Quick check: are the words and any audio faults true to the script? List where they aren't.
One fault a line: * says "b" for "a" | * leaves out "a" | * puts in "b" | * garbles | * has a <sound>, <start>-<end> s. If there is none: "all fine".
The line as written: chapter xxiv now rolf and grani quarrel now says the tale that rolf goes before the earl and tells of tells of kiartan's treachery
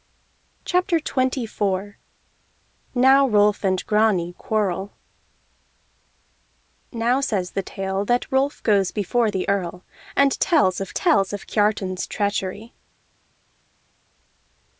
all fine